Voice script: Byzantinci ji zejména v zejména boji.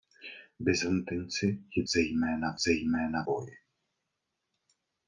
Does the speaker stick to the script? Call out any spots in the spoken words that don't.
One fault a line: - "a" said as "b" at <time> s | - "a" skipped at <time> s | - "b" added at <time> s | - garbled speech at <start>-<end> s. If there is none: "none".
none